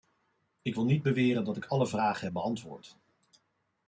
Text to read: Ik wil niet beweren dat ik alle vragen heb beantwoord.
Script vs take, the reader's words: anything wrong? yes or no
no